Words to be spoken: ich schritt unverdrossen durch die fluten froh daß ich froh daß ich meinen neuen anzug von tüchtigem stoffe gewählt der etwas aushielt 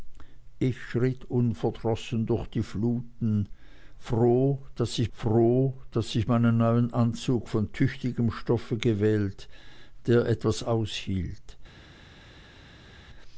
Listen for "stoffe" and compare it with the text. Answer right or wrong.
right